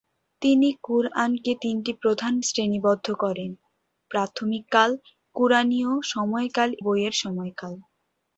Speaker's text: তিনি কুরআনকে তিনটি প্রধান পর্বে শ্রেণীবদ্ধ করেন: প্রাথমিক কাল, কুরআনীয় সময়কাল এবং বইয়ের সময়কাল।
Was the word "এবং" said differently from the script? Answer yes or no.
yes